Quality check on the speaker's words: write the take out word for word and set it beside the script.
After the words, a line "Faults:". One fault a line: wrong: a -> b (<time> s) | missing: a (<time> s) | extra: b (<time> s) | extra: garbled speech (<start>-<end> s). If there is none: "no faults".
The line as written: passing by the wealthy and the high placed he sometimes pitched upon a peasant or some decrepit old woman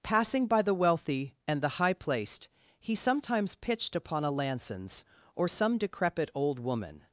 passing by the wealthy and the high placed he sometimes pitched upon a lansons or some decrepit old woman
Faults:
wrong: peasant -> lansons (4.3 s)